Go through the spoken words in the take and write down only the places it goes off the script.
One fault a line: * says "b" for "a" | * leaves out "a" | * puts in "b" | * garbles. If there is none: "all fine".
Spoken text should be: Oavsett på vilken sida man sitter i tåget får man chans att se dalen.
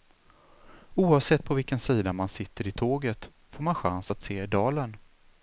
all fine